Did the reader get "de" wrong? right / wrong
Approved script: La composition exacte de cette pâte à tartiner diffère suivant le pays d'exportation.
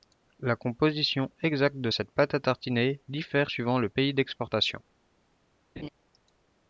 right